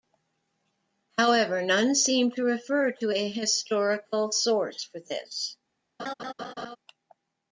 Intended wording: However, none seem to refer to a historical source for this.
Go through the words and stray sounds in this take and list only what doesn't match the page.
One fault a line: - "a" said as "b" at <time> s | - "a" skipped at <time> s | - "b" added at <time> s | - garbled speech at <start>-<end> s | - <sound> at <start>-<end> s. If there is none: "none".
- laugh at 6.0-6.8 s